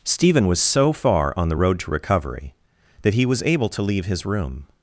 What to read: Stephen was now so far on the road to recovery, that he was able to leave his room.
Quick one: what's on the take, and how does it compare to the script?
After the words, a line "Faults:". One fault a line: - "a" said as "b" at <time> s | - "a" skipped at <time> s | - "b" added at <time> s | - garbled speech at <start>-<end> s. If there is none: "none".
Stephen was so far on the road to recovery, that he was able to leave his room.
Faults:
- "now" skipped at 0.6 s